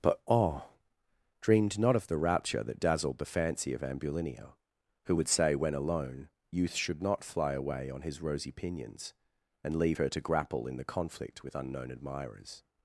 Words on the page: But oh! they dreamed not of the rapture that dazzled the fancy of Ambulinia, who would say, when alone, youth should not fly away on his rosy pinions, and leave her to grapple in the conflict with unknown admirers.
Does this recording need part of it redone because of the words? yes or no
yes